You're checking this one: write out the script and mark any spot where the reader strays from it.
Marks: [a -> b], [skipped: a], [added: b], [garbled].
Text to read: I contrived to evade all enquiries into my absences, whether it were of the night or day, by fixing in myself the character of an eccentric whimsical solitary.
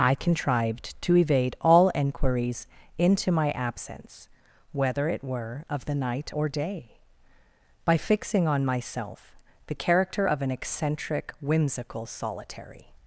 I contrived to evade all enquiries into my [absences, -> absence] whether it were of the night or day, by fixing [in -> on] myself the character of an eccentric whimsical solitary.